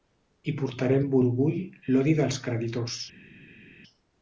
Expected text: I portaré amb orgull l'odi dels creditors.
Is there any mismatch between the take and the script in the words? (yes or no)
no